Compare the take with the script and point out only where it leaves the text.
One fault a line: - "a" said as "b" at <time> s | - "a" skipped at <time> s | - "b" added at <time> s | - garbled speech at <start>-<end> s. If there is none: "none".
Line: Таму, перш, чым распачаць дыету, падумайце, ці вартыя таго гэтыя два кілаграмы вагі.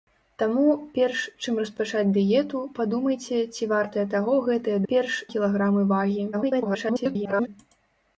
- "два" said as "перш" at 4.9 s
- garbled speech at 6.3-7.5 s